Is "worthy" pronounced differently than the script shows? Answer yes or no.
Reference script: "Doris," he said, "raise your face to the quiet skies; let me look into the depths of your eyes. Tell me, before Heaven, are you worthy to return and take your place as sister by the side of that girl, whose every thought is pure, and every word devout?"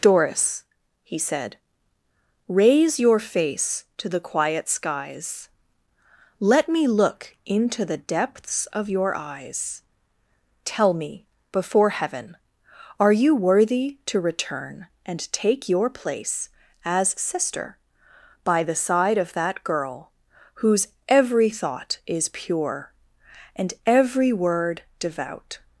no